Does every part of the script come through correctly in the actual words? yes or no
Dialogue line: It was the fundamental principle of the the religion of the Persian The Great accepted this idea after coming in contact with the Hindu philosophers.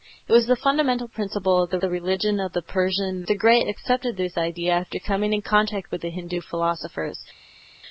yes